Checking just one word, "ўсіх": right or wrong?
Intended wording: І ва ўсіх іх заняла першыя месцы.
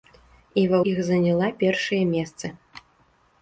wrong